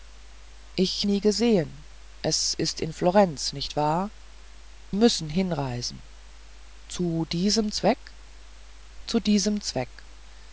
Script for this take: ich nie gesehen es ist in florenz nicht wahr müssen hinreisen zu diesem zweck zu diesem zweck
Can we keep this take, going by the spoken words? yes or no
yes